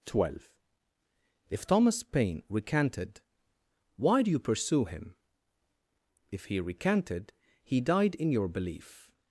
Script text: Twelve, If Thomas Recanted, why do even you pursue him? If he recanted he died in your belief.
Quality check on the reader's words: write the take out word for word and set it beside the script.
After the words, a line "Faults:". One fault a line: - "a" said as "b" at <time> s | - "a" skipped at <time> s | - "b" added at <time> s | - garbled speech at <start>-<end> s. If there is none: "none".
Twelve, If Thomas Paine recanted, why do you pursue him? If he recanted he died in your belief.
Faults:
- "Paine" added at 2.0 s
- "even" skipped at 4.3 s